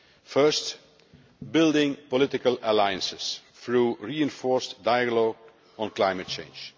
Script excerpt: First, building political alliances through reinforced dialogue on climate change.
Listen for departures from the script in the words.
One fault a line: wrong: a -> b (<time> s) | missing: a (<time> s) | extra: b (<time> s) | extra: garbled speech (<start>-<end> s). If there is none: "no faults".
no faults